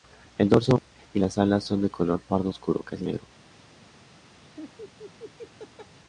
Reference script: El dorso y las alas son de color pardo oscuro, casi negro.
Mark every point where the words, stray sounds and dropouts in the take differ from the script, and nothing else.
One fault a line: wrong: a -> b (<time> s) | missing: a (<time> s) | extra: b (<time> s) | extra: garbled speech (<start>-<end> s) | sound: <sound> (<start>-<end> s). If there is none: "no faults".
sound: laugh (4.4-6.0 s)